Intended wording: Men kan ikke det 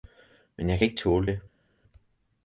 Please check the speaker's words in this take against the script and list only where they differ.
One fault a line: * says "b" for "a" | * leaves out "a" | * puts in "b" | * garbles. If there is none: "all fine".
* puts in "jeg"
* puts in "tåle"